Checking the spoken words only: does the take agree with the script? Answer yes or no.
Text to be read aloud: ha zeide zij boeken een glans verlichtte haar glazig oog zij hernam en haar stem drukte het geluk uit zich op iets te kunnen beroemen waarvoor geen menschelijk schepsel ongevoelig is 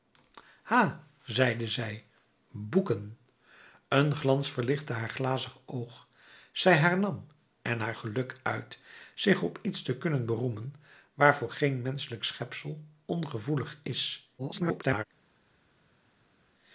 no